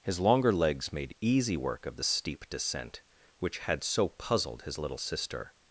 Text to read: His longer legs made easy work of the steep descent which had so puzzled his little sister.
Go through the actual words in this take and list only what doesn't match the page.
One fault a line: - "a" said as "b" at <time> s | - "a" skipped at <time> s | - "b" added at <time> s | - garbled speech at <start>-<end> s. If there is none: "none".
none